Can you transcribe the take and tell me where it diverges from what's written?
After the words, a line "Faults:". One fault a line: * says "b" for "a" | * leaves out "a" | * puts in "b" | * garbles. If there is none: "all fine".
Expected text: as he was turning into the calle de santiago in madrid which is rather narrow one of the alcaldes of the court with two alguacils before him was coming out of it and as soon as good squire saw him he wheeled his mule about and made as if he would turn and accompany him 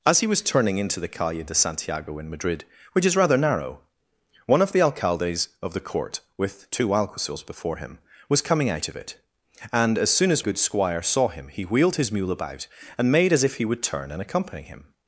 as he was turning into the calle de santiago in madrid which is rather narrow one of the alcaldes of the court with two alguacils before him was coming out of it and as soon as good squire saw him he wheeled his mule about and made as if he would turn and accompany him
Faults:
all fine